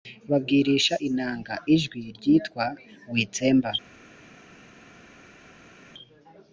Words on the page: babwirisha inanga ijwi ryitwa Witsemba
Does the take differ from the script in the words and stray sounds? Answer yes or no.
no